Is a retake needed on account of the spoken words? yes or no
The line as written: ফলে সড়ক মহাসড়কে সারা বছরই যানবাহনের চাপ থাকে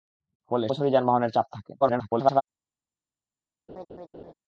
yes